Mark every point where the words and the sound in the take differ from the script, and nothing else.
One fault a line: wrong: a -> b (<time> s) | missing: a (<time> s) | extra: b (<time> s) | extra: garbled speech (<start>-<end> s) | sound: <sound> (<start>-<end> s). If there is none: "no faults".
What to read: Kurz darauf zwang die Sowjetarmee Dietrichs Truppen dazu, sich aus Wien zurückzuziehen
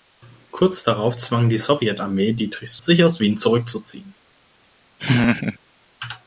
missing: Truppen dazu (2.8 s)
sound: laugh (5.0-5.6 s)